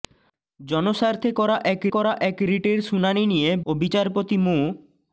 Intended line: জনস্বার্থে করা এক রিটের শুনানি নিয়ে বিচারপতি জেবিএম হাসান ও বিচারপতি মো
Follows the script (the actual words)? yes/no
no